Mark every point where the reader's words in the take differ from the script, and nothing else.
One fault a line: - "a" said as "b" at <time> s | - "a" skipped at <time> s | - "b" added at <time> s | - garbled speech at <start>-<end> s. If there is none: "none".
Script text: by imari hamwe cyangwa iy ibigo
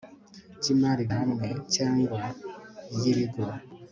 none